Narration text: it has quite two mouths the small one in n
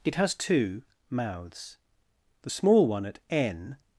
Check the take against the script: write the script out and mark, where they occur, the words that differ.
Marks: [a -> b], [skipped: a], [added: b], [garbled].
it has [skipped: quite] two mouths the small one [in -> at] n